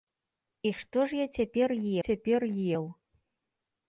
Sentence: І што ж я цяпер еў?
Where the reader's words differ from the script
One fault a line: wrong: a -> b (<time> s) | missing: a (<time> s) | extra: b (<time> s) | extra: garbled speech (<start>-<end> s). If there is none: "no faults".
extra: цяпер (2.0 s)